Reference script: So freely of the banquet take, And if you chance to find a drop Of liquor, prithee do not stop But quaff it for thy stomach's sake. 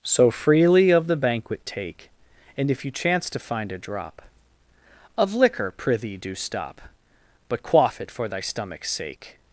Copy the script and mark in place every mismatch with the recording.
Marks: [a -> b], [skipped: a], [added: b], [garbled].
So freely of the banquet take, And if you chance to find a drop Of liquor, prithee do [skipped: not] stop But quaff it for thy stomach's sake.